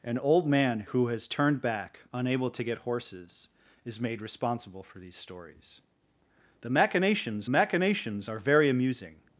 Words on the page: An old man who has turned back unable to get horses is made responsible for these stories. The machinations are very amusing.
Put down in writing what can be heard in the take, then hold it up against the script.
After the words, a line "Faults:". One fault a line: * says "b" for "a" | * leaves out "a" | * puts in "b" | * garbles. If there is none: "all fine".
An old man who has turned back unable to get horses is made responsible for these stories. The machinations machinations are very amusing.
Faults:
* puts in "machinations"